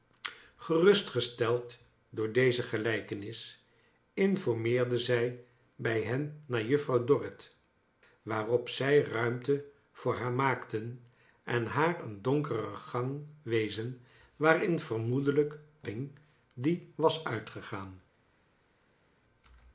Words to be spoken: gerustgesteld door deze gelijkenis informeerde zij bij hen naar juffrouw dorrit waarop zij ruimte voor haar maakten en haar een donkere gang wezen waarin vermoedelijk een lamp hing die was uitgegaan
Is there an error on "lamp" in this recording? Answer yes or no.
yes